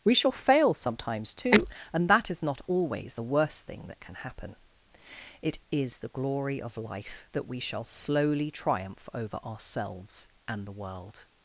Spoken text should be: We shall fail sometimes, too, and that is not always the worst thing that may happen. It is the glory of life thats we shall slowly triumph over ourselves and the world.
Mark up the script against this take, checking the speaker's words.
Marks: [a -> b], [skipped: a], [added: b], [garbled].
We shall fail sometimes, too, and that is not always the worst thing that [may -> can] happen. It is the glory of life [thats -> that] we shall slowly triumph over ourselves and the world.